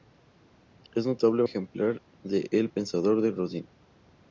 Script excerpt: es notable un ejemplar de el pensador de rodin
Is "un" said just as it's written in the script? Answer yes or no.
no